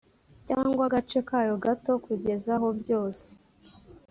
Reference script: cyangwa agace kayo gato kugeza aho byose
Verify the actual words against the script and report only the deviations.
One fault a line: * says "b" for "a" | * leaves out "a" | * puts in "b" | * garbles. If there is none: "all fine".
all fine